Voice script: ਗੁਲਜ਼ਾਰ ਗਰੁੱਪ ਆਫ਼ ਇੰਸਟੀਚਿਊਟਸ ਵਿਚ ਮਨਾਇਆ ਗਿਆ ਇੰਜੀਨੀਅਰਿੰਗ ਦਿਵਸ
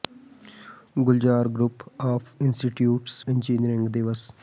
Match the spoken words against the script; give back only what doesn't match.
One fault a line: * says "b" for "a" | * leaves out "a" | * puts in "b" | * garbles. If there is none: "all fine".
* leaves out "ਵਿਚ ਮਨਾਇਆ ਗਿਆ"